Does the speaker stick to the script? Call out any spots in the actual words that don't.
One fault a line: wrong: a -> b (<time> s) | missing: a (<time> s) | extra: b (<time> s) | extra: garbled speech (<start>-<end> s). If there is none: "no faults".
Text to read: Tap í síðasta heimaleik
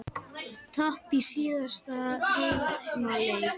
no faults